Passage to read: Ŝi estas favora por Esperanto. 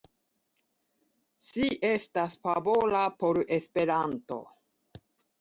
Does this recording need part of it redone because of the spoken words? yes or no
no